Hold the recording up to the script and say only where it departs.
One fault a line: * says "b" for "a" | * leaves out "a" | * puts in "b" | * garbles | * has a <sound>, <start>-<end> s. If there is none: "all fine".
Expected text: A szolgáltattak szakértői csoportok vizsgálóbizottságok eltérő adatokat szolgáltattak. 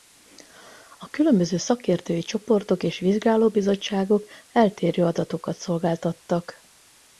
* says "különböző" for "szolgáltattak"
* puts in "és"